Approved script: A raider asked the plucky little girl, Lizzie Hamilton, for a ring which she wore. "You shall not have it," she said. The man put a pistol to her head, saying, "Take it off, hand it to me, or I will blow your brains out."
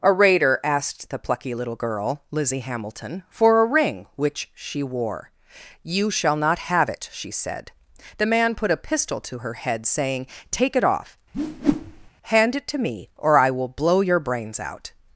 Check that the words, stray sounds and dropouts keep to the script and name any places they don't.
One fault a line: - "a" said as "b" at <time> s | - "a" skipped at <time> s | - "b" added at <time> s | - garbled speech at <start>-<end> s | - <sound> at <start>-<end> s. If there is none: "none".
- whoosh at 11.3-12.1 s